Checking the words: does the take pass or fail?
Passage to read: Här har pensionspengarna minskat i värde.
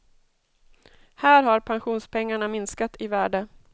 pass